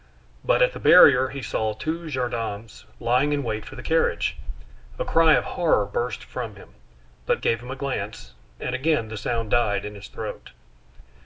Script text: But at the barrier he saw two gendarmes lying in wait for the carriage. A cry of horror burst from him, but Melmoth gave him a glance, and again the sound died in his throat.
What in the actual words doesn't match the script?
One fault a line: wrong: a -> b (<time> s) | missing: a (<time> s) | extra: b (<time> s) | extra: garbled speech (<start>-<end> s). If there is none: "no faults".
missing: Melmoth (7.4 s)